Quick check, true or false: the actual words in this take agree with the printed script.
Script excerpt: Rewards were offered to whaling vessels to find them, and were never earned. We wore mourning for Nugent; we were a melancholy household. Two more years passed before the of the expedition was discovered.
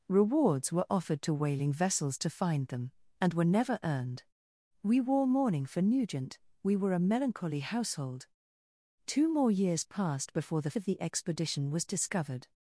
true